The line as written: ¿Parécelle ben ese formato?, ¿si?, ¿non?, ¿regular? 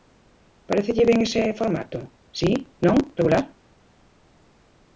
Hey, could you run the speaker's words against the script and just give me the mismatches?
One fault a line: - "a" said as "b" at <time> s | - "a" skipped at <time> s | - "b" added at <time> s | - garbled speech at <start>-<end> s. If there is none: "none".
none